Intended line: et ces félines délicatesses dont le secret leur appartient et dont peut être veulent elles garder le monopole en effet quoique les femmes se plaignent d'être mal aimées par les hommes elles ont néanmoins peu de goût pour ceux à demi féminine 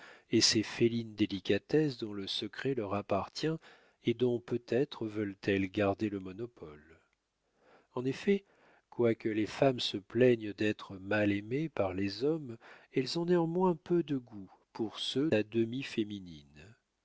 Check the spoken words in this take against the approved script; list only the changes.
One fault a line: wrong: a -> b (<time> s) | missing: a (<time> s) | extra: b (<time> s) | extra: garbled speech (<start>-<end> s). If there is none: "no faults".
no faults